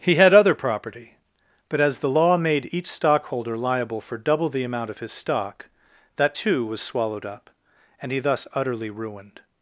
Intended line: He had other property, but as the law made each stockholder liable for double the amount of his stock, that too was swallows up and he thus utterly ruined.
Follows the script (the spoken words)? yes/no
no